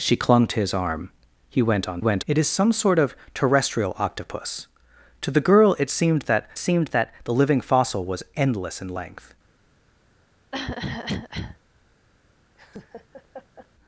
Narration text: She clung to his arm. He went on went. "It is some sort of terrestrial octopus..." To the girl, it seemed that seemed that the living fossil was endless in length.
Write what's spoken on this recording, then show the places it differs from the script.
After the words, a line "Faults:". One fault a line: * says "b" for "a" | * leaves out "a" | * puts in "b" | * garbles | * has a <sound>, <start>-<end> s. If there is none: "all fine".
She clung to his arm. He went on went. "It is some sort of terrestrial octopus..." To the girl, it seemed that seemed that the living fossil was endless in length.
Faults:
* has a cough, 10.5-11.6 s
* has a laugh, 12.5-13.7 s